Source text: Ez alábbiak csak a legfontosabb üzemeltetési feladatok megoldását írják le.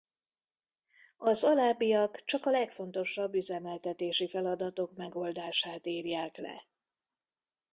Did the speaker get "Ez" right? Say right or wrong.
wrong